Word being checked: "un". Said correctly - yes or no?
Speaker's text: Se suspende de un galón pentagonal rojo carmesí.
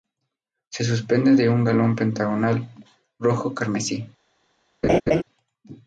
yes